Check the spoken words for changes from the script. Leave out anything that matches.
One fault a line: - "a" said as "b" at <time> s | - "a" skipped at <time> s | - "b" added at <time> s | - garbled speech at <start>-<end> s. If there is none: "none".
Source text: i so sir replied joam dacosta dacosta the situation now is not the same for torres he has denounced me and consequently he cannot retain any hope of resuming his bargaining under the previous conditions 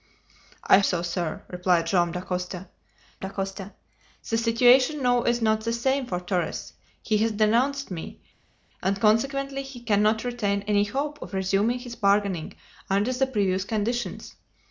none